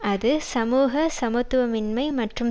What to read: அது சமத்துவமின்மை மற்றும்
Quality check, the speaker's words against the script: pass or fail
fail